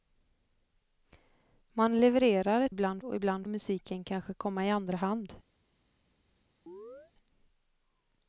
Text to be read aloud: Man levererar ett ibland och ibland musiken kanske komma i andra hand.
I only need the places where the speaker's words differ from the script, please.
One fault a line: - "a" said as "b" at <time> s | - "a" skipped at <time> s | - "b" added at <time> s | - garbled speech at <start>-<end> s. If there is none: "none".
none